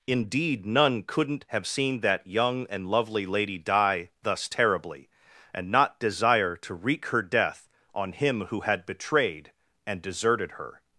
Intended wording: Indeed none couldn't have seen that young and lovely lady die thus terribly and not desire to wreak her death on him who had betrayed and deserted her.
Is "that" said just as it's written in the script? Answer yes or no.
yes